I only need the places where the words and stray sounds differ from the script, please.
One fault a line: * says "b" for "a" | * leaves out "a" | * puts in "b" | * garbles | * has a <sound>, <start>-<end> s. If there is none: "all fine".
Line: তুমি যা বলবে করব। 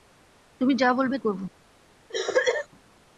* has a cough, 2.1-2.7 s